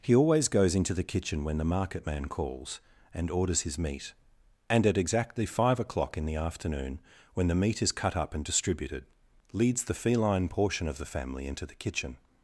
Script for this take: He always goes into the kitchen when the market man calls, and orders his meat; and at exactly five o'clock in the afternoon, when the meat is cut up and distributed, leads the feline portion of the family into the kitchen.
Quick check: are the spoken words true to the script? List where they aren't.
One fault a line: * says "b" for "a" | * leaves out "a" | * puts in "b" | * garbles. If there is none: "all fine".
all fine